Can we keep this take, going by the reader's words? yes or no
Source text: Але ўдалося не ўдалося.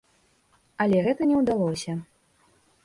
no